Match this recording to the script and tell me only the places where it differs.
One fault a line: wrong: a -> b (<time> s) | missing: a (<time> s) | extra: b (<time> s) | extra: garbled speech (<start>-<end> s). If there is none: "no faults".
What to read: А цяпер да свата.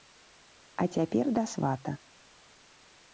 no faults